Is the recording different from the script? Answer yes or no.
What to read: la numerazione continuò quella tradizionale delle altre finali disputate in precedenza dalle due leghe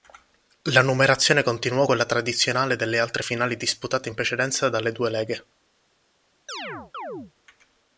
no